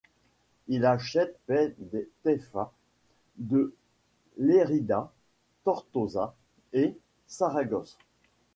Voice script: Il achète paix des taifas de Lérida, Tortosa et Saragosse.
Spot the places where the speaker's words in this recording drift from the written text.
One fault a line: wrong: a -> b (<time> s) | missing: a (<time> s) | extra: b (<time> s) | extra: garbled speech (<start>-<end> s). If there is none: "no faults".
no faults